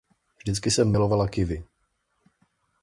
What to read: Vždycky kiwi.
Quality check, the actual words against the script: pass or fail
fail